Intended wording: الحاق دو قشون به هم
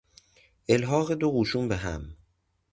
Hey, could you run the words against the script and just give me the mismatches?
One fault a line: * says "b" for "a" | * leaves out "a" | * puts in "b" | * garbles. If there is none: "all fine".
all fine